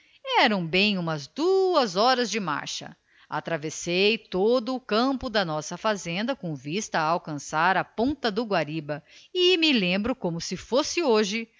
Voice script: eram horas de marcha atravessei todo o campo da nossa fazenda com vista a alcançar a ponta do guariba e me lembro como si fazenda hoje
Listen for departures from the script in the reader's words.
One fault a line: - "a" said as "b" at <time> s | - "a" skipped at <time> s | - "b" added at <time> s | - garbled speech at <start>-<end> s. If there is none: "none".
- "bem umas duas" added at 0.7 s
- "fazenda" said as "fosse" at 10.5 s